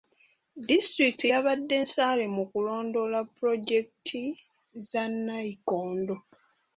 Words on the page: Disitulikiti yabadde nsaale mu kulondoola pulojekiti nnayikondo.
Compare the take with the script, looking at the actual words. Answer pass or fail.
fail